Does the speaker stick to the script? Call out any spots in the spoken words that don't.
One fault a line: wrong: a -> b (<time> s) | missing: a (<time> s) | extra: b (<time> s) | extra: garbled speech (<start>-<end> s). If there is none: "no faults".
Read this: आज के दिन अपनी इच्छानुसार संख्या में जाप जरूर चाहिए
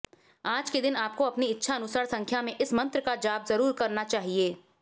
extra: आपको (0.9 s)
extra: इस मंत्र का (2.6 s)
extra: करना (3.7 s)